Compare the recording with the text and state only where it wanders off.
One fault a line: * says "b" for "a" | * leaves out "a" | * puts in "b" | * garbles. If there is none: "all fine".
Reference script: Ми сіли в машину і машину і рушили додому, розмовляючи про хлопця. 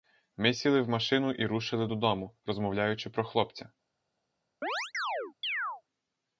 * leaves out "машину і"